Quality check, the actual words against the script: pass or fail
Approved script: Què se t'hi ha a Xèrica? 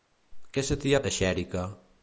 pass